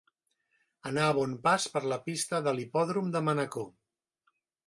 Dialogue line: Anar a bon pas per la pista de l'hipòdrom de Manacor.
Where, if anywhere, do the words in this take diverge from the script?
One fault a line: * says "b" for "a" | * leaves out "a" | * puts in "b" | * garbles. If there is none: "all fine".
all fine